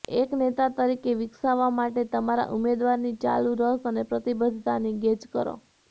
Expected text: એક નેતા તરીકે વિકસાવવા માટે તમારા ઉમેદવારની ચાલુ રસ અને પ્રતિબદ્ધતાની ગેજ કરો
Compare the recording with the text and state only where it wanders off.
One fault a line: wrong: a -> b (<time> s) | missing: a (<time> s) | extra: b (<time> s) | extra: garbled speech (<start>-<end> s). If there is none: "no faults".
no faults